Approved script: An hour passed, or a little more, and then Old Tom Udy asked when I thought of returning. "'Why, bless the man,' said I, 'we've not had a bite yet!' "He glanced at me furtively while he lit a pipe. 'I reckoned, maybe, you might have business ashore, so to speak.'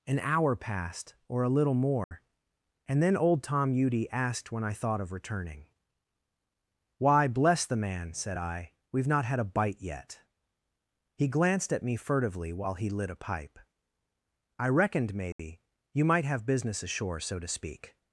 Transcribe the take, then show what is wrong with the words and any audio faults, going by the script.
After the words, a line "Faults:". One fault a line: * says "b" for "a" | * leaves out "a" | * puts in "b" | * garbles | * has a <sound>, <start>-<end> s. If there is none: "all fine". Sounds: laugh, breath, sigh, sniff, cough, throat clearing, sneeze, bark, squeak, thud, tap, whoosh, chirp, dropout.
An hour passed, or a little more, and then Old Tom Udy asked when I thought of returning. "'Why, bless the man,' said I, 'we've not had a bite yet!' "He glanced at me furtively while he lit a pipe. 'I reckoned, maybe, you might have business ashore, so to speak.'
Faults:
* has a dropout, 2.0-2.1 s
* has a dropout, 15.3-15.4 s